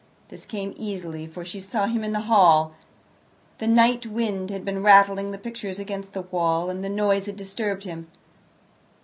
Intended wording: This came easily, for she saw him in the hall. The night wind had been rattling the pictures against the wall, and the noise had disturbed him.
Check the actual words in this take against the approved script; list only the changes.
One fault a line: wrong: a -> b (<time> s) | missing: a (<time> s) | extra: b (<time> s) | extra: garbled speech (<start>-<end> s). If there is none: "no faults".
no faults